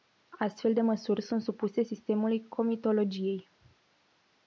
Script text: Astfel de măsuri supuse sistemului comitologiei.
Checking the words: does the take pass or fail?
fail